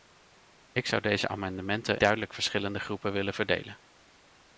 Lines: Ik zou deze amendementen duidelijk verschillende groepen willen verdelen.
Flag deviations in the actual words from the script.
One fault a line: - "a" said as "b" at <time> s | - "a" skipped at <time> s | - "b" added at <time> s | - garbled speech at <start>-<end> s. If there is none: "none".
none